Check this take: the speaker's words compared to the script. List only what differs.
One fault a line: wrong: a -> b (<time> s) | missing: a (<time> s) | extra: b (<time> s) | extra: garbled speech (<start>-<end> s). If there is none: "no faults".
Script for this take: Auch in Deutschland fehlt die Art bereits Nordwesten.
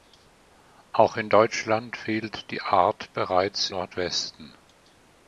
no faults